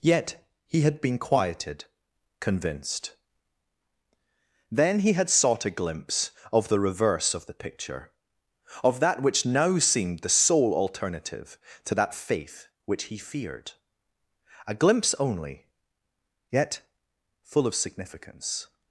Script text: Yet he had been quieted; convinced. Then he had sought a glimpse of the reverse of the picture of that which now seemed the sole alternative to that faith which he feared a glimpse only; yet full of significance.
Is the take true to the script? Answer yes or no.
yes